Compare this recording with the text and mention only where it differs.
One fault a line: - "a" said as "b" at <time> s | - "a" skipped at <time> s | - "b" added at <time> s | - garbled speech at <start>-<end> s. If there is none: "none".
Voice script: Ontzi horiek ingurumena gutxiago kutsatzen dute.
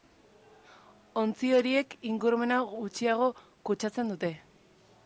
none